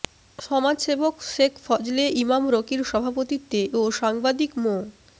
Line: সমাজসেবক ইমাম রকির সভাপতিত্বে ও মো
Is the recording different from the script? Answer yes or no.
yes